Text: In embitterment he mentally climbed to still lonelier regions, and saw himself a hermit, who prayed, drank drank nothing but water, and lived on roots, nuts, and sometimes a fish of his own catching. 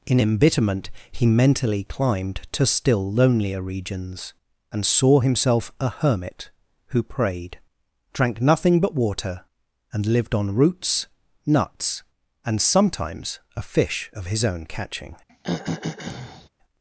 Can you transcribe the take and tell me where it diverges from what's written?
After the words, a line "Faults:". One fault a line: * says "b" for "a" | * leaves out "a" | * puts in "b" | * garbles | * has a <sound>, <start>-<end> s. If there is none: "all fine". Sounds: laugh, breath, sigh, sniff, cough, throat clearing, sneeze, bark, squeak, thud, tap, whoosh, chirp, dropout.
In embitterment he mentally climbed to still lonelier regions, and saw himself a hermit, who prayed, drank nothing but water, and lived on roots, nuts, and sometimes a fish of his own catching.
Faults:
* leaves out "drank"
* has a throat clearing, 15.3-16.5 s